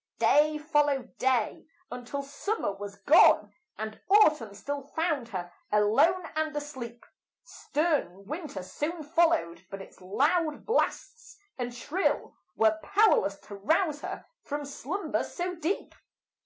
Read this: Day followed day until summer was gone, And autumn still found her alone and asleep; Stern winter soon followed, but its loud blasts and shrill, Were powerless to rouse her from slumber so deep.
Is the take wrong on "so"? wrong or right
right